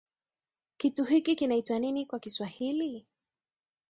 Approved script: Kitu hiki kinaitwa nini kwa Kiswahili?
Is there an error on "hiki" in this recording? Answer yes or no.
no